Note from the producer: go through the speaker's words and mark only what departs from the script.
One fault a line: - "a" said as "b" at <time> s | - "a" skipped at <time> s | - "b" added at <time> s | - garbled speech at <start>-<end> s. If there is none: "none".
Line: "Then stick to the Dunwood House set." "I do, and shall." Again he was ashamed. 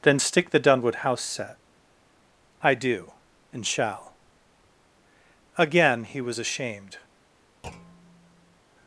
- "to" skipped at 0.5 s